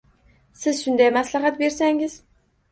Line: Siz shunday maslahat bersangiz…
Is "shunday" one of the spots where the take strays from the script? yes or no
no